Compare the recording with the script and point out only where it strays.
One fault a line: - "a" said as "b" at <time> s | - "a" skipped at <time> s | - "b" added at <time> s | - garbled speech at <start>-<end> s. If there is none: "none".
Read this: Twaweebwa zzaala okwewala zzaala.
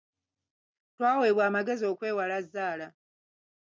- "zzaala" said as "amagezi" at 1.5 s